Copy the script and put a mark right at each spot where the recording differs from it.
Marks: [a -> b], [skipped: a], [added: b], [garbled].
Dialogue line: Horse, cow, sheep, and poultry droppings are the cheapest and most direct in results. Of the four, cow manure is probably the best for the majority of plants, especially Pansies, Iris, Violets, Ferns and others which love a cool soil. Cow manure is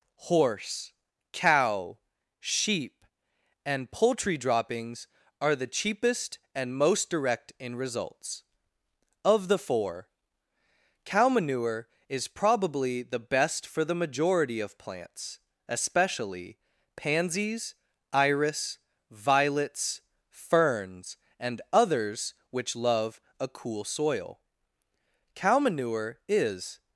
Horse, cow, sheep, and poultry droppings are the cheapest and most direct in results. Of the four, cow manure is probably the best for the majority of plants, especially Pansies, Iris, Violets, Ferns and others which love a cool soil. Cow manure is